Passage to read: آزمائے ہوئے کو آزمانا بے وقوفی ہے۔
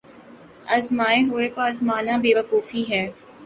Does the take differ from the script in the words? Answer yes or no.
no